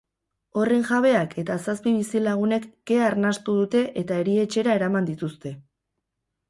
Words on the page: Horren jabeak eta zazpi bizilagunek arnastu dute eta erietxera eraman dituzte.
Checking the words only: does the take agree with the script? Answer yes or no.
no